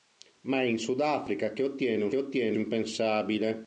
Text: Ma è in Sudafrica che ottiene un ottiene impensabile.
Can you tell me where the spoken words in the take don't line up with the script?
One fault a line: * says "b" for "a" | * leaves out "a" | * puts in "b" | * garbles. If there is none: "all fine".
all fine